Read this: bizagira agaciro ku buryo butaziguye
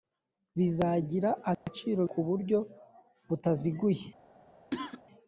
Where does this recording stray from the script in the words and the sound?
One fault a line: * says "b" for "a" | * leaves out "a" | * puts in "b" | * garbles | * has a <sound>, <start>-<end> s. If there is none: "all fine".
* has a dropout, 1.5-1.7 s
* has a cough, 4.7-5.0 s